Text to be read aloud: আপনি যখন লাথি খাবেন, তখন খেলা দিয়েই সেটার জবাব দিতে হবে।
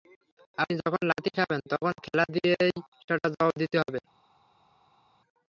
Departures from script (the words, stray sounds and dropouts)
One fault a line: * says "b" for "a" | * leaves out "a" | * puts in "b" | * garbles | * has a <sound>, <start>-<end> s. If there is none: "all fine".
all fine